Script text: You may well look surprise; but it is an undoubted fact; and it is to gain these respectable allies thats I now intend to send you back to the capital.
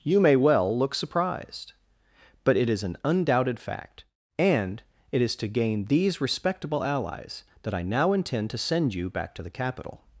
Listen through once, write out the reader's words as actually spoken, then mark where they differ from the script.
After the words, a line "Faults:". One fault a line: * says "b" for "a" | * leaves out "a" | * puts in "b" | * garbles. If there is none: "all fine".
You may well look surprised; but it is an undoubted fact; and it is to gain these respectable allies that I now intend to send you back to the capital.
Faults:
* says "surprised" for "surprise"
* says "that" for "thats"